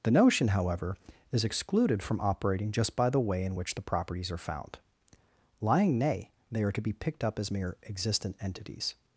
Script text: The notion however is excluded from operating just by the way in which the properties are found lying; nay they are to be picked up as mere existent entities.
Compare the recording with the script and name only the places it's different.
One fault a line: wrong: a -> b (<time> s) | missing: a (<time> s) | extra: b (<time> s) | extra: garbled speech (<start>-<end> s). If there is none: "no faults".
no faults